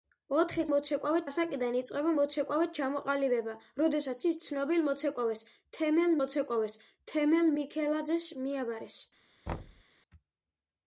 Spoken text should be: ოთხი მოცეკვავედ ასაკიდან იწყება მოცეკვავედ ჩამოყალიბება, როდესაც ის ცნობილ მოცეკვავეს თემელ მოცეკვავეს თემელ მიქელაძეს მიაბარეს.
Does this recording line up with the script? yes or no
yes